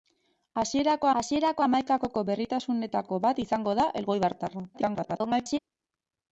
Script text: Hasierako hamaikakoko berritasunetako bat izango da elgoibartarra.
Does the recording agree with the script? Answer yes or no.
no